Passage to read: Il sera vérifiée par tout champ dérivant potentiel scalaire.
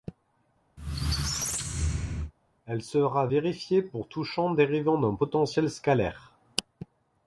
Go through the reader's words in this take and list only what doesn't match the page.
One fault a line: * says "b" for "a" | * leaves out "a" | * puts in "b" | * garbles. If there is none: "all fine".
* says "Elle" for "Il"
* says "pour" for "par"
* puts in "d'un"